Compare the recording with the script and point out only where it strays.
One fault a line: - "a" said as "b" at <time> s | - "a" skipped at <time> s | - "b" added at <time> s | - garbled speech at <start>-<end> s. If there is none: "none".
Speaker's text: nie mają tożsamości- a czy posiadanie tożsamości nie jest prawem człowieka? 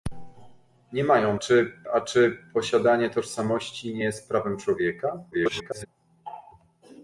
- "tożsamości" said as "czy" at 1.3 s
- garbled speech at 5.3-5.9 s